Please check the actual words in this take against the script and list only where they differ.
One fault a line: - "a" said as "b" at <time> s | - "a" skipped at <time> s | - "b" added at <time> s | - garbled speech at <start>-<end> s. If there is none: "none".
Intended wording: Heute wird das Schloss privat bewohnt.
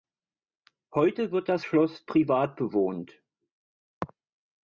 none